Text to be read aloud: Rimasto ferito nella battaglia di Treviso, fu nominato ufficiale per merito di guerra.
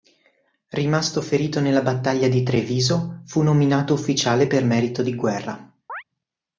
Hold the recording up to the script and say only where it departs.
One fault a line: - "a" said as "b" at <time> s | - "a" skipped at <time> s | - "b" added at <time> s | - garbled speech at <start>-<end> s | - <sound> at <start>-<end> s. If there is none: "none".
- chirp at 5.9-6.0 s